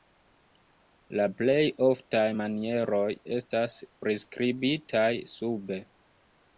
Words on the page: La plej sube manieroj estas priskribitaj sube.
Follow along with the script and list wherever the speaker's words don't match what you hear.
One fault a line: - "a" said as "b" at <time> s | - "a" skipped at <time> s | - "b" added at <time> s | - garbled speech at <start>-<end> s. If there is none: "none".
- "sube" said as "oftaj" at 1.9 s